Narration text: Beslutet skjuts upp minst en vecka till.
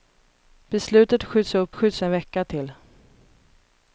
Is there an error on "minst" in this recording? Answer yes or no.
yes